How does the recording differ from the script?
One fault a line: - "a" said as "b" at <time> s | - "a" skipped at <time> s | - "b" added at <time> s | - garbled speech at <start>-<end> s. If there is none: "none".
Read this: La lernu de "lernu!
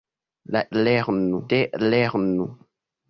none